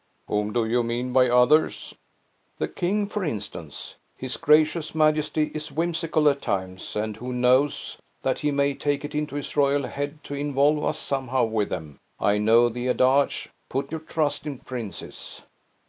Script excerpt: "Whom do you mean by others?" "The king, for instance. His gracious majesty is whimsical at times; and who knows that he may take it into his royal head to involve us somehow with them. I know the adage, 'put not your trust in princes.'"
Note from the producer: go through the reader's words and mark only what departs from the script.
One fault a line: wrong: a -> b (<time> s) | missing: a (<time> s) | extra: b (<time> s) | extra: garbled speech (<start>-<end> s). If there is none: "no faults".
missing: not (13.9 s)